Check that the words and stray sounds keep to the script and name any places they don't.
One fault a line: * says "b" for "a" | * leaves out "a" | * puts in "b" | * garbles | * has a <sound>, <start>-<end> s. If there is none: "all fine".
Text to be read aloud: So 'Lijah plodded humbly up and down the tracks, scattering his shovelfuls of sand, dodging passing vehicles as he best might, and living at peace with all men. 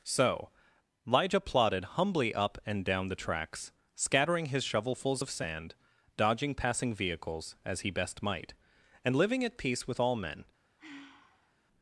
* has a sigh, 10.8-11.5 s